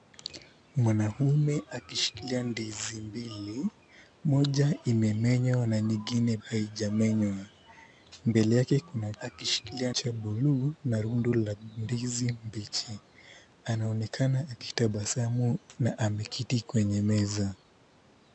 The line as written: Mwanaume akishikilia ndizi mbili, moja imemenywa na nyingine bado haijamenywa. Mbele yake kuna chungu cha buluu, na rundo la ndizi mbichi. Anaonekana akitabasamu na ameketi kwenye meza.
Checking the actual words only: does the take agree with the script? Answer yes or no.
no